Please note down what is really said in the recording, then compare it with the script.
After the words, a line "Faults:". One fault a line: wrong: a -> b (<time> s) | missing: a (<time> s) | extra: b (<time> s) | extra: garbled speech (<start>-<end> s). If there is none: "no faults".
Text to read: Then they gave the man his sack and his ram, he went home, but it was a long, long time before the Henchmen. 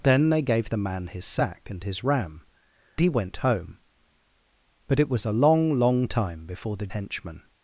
Then they gave the man his sack and his ram, he went home, but it was a long, long time before the Henchmen.
Faults:
no faults